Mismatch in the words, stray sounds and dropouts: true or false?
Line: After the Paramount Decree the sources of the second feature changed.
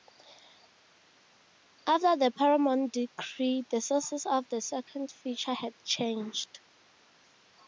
true